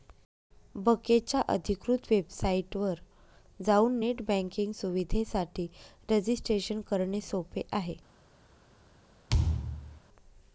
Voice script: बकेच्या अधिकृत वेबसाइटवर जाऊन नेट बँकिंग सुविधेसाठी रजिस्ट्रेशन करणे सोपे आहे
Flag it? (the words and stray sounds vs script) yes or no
yes